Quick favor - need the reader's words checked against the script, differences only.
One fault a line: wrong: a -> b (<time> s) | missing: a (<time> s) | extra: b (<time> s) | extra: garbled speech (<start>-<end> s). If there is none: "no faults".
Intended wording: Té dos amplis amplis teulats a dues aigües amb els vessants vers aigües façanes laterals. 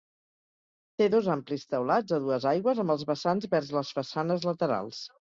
missing: amplis (1.7 s)
wrong: aigües -> les (3.8 s)